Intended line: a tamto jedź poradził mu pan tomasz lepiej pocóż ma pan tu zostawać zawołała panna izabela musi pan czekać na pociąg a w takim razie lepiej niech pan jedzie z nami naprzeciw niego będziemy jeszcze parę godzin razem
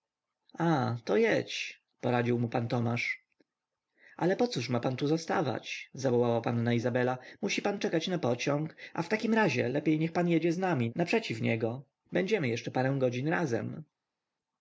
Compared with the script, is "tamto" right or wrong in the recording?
wrong